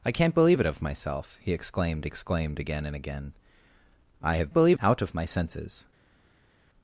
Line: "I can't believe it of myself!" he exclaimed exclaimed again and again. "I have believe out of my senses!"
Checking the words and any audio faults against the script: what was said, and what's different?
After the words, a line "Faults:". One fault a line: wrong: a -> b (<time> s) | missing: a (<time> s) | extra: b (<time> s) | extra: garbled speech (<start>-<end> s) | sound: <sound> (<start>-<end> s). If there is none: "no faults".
"I can't believe it of myself!" he exclaimed exclaimed again and again. "I have believe out of my senses!"
Faults:
no faults